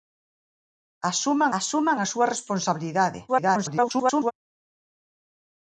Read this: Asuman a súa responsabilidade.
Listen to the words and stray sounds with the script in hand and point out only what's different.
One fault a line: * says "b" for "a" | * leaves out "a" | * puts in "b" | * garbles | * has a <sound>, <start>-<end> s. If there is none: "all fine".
* puts in "asuman"
* garbles